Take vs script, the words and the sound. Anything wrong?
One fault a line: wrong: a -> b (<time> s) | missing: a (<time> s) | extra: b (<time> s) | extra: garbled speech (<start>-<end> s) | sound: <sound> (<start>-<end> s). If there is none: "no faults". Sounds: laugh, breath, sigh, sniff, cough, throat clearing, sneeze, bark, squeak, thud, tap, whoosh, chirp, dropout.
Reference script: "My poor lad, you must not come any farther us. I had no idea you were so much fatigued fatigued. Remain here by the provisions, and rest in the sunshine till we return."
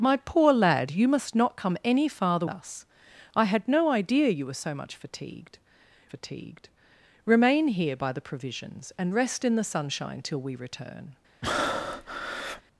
sound: breath (11.4-12.6 s)